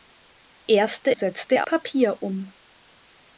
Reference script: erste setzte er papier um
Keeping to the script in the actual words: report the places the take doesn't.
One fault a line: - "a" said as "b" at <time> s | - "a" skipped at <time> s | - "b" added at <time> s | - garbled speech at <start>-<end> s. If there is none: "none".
none